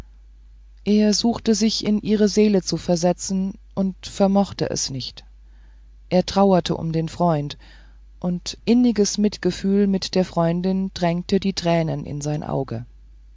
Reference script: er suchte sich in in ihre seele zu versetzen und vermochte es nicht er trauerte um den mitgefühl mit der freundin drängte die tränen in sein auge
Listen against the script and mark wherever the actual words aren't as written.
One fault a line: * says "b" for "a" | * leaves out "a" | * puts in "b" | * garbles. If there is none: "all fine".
* leaves out "in"
* puts in "freund und inniges"